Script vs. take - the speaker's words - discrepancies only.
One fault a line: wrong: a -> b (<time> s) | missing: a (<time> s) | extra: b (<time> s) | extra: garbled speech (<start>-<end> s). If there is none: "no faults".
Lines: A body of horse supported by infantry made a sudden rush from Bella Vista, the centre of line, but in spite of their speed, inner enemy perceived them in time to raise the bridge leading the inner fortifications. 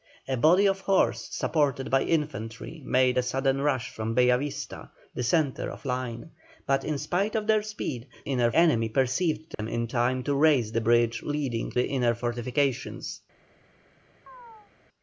no faults